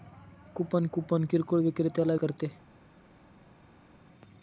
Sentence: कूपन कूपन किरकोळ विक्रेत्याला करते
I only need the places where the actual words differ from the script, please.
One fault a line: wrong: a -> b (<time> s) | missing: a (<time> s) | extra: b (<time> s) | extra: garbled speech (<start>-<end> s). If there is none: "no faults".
no faults